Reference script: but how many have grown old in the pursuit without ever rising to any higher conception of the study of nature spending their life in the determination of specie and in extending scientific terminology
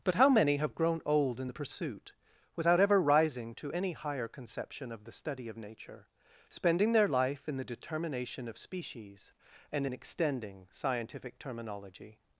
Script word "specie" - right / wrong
wrong